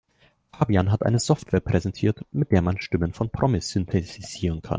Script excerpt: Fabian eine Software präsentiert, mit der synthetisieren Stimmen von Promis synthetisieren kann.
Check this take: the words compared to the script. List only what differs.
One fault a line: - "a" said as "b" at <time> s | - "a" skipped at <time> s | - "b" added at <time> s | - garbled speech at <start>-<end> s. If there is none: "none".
- "hat" added at 0.9 s
- "synthetisieren" said as "man" at 2.6 s